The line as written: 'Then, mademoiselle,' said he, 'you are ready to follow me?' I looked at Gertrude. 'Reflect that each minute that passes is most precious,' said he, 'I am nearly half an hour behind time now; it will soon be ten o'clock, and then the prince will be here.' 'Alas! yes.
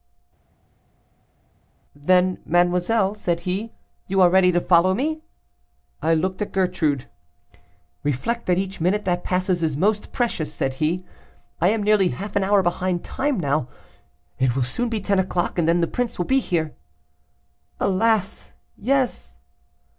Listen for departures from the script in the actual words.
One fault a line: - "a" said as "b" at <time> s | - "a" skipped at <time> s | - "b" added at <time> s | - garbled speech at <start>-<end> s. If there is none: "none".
none